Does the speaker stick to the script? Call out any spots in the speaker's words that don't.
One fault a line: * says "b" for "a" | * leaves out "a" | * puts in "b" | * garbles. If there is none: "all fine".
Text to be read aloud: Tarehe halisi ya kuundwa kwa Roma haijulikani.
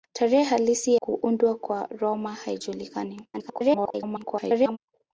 * leaves out "ya"
* garbles